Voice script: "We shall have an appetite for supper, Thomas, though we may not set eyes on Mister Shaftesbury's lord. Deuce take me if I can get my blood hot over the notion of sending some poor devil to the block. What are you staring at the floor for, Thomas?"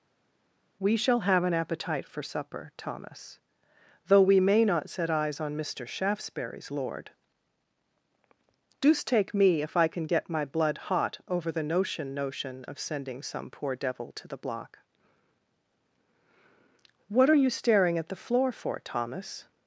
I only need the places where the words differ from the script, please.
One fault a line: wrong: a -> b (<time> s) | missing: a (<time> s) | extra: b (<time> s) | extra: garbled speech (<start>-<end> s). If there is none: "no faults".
extra: notion (12.1 s)